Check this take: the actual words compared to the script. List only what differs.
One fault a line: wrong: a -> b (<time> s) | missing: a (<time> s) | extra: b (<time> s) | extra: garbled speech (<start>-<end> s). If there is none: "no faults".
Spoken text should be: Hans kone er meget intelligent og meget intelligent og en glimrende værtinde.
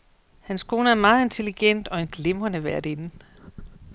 missing: meget intelligent og (2.0 s)